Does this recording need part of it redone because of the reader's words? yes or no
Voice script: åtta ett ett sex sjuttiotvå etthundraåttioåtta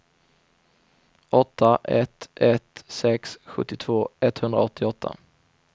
no